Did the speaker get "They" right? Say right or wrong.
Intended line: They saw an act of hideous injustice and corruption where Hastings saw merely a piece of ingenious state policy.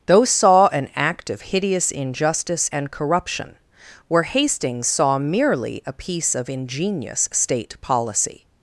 wrong